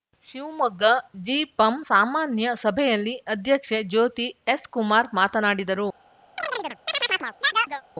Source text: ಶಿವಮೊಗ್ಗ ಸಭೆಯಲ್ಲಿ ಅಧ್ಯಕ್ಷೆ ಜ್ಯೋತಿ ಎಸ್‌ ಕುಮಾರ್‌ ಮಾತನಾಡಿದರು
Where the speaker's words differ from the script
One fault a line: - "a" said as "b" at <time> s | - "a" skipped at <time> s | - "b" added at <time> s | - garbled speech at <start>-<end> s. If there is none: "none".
- "ಜಿಪಂ ಸಾಮಾನ್ಯ" added at 1.2 s